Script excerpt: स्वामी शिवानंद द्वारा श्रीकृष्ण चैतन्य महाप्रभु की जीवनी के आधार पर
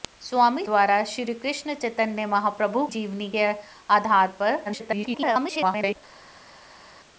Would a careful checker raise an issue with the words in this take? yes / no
yes